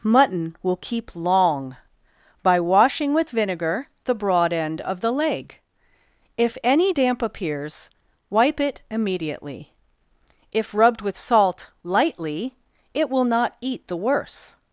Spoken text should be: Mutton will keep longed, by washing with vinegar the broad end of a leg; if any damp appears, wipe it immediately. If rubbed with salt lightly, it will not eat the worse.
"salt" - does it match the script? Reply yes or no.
yes